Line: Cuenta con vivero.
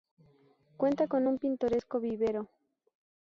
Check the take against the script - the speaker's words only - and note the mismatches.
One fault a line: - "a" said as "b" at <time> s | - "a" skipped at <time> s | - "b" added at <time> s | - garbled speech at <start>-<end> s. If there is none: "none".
- "un pintoresco" added at 1.3 s